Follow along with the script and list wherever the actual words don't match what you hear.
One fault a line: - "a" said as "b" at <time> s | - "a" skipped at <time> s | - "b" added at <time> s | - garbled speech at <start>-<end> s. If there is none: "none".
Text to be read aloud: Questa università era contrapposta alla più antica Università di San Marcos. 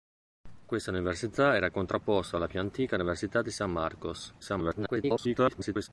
- garbled speech at 4.4-5.9 s